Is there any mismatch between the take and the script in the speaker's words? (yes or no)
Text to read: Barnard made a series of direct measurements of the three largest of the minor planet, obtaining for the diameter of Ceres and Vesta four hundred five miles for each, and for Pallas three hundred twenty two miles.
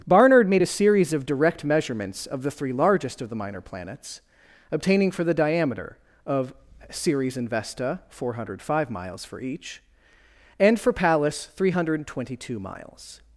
yes